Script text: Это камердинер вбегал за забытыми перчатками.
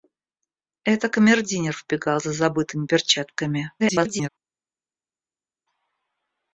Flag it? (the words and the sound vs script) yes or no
yes